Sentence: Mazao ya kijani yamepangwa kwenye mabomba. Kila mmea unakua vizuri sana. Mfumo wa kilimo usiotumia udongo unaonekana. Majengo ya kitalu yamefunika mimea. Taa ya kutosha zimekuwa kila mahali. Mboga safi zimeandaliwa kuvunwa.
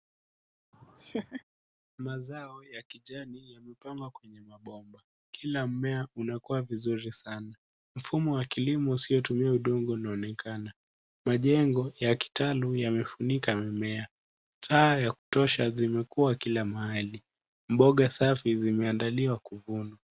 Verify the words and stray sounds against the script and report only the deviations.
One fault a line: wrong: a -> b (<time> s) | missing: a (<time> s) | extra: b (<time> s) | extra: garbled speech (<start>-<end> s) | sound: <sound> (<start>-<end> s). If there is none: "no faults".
sound: laugh (0.7-1.4 s)
sound: dropout (15.2-15.3 s)